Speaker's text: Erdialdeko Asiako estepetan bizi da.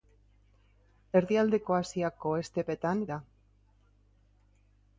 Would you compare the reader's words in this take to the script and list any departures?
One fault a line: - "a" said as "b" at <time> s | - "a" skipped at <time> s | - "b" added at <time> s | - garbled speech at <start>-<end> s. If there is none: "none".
- "bizi" skipped at 3.0 s